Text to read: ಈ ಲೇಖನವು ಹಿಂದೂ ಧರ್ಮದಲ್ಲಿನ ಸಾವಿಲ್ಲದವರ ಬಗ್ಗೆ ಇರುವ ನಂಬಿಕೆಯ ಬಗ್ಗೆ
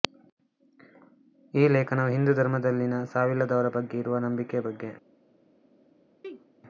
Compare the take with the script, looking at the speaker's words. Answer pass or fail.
pass